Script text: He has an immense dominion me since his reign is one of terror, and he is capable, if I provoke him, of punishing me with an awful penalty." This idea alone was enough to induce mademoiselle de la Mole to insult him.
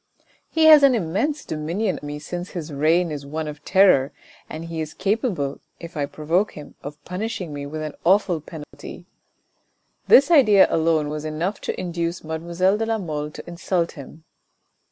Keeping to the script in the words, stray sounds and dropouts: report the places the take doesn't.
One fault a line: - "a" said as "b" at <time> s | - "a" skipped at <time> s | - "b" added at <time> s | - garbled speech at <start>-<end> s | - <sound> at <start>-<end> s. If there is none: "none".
- dropout at 8.6-8.7 s